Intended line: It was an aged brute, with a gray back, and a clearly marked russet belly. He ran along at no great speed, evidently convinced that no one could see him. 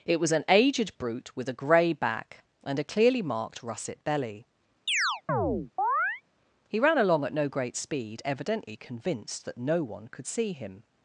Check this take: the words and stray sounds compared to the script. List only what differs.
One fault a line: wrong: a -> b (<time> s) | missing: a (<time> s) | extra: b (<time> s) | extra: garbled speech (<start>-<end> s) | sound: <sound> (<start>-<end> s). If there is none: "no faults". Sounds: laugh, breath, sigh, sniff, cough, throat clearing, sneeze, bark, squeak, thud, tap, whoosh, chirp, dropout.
sound: chirp (4.9-6.2 s)